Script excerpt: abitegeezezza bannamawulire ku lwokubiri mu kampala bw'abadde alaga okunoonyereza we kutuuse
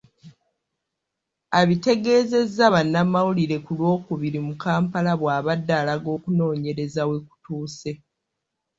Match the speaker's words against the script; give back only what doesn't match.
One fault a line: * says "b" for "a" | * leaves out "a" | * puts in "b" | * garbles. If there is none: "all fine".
all fine